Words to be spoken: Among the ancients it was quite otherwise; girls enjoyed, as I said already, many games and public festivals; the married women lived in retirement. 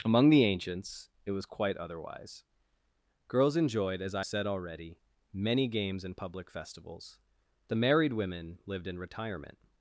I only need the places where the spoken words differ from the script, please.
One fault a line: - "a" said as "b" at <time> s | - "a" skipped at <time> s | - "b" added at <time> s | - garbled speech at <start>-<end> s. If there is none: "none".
none